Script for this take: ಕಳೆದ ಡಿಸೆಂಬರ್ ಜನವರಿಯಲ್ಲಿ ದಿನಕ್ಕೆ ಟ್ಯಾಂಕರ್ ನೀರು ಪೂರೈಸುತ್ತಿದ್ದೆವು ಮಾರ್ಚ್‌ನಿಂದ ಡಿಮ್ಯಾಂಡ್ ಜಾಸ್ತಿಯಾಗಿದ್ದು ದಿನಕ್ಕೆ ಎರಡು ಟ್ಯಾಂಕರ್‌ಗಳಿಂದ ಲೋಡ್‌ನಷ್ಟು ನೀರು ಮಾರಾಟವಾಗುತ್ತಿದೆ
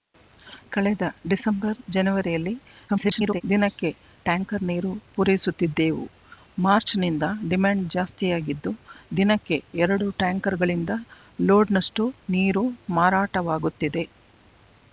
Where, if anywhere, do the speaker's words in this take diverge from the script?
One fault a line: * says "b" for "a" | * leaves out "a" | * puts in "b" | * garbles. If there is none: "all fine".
* garbles